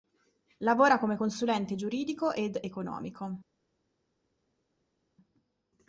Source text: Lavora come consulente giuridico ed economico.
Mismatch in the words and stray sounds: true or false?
false